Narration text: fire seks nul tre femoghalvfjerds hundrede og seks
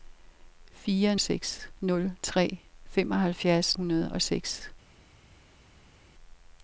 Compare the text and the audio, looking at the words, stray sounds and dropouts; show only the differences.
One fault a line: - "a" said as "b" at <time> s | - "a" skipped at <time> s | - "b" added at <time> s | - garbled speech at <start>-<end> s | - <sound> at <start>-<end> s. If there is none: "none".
none